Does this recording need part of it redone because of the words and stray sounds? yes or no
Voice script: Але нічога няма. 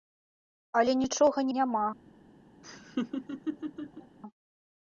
yes